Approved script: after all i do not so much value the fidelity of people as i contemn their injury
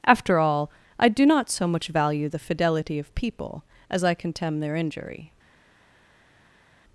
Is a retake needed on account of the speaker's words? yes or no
no